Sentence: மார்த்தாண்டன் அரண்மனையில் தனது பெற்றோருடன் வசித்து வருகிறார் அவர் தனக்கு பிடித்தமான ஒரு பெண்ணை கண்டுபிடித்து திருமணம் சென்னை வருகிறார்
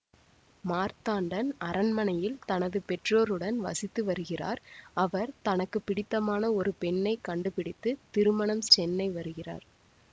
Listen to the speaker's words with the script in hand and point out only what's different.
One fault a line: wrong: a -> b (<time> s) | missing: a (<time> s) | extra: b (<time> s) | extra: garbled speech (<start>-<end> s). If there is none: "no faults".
no faults